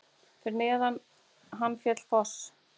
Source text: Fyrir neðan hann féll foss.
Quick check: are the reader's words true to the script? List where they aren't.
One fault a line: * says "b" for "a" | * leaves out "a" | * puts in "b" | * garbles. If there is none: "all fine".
all fine